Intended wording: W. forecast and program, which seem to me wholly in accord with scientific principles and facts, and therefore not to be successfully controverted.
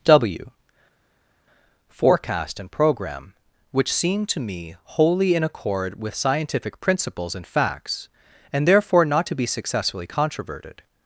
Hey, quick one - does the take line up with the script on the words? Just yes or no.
yes